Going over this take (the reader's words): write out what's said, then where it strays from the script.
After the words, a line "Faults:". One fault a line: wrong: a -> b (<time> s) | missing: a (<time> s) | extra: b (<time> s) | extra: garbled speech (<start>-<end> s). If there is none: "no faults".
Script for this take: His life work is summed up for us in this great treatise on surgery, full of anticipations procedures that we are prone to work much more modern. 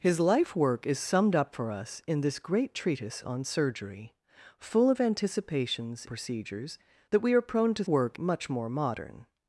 His life work is summed up for us in this great treatise on surgery, full of anticipations procedures that we are prone to work much more modern.
Faults:
no faults